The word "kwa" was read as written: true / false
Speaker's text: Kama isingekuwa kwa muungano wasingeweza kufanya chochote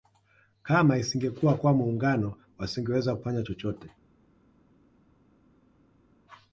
true